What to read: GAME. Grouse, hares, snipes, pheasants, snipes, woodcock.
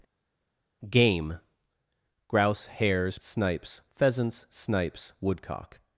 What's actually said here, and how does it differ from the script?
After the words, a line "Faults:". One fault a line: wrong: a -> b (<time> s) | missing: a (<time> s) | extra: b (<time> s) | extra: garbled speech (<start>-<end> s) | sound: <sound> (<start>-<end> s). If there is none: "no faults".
GAME. Grouse, hares, snipes, pheasants, snipes, woodcock.
Faults:
no faults